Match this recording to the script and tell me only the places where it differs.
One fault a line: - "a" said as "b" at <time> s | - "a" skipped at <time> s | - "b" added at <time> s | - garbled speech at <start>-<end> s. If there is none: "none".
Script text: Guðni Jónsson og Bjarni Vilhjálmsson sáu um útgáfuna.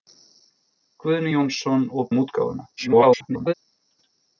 - "Bjarni Vilhjálmsson sáu" skipped at 2.1 s
- garbled speech at 2.8-3.5 s